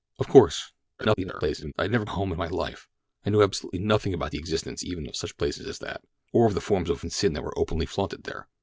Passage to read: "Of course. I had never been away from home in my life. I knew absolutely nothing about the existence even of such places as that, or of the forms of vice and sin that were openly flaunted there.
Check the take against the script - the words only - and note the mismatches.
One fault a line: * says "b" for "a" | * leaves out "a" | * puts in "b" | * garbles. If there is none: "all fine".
* garbles
* leaves out "been away from"
* leaves out "vice"